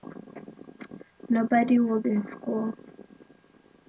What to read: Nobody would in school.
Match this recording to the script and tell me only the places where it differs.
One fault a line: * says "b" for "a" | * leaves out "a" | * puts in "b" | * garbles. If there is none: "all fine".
all fine